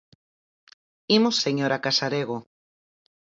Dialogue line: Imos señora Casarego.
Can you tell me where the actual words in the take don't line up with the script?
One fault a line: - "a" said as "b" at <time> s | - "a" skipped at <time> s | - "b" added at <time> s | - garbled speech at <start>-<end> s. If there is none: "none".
none